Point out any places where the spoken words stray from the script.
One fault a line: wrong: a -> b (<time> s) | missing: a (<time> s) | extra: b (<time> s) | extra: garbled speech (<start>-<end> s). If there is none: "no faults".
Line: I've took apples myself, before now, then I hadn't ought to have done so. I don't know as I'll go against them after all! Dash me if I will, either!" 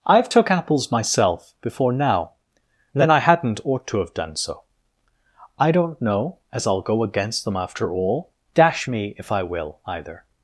no faults